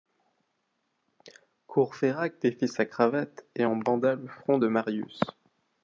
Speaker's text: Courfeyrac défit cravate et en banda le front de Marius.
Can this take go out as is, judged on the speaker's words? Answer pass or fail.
fail